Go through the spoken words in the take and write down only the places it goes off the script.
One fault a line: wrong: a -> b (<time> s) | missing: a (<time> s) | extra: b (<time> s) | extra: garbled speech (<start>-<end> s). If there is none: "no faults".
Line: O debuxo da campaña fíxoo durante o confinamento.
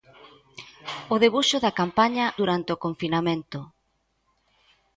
missing: fíxoo (2.2 s)